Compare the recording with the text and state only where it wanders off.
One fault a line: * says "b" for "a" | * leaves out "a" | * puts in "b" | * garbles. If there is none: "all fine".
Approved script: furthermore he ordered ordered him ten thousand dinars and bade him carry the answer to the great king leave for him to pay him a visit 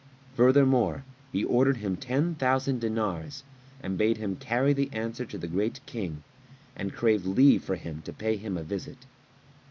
* leaves out "ordered"
* puts in "and crave"